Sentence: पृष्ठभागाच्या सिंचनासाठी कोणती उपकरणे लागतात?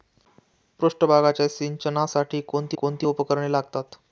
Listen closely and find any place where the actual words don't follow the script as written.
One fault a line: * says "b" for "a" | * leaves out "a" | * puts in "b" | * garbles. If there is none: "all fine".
* puts in "कोणती"